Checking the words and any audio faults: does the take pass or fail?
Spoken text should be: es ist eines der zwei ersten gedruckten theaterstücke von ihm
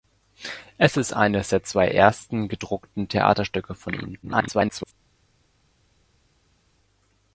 fail